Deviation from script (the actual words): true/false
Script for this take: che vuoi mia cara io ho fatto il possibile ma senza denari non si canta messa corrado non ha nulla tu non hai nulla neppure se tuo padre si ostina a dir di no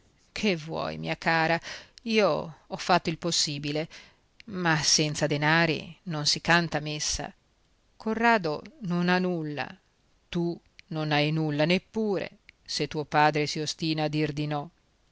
false